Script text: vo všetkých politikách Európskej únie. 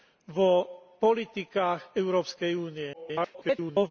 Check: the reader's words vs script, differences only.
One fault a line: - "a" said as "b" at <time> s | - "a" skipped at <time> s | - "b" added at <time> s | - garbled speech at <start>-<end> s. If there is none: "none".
- "všetkých" skipped at 0.8 s
- garbled speech at 2.9-3.9 s